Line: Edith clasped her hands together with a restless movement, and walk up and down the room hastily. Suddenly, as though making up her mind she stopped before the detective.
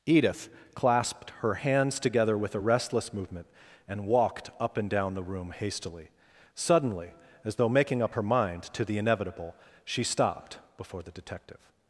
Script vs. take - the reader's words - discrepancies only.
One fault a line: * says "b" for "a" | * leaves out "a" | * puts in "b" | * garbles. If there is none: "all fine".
* says "walked" for "walk"
* puts in "to the inevitable"